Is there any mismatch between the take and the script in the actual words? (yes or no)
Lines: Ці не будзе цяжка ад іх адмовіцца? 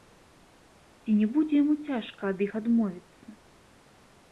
yes